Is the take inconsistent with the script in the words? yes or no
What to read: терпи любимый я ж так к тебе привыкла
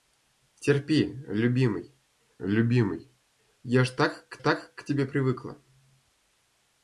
yes